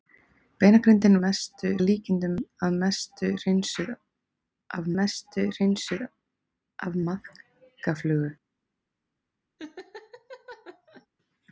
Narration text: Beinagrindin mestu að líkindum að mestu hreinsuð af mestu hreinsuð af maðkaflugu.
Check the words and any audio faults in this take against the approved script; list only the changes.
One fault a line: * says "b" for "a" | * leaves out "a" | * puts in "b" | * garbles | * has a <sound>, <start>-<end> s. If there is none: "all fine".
* has a laugh, 9.6-11.1 s